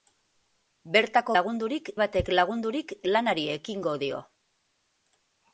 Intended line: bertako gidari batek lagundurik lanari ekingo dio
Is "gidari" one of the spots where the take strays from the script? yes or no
yes